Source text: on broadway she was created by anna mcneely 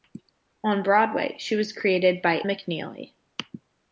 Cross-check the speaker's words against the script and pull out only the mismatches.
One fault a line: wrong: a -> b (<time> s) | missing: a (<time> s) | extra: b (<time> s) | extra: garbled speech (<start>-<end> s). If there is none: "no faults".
missing: anna (2.4 s)